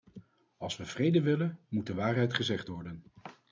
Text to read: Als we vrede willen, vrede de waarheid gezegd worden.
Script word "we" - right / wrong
right